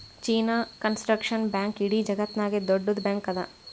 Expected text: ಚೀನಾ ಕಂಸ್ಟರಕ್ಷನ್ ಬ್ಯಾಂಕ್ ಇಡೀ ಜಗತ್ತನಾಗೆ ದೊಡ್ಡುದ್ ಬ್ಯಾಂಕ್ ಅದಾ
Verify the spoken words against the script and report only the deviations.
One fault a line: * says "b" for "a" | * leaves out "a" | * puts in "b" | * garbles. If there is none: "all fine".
all fine